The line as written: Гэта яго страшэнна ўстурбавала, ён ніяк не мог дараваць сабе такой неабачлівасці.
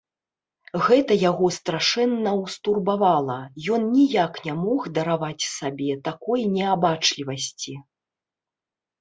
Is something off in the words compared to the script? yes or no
no